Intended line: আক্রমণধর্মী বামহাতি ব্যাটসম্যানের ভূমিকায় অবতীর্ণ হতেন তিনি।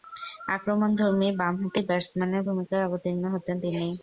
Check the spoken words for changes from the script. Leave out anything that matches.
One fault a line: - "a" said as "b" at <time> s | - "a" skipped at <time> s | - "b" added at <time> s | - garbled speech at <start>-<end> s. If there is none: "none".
none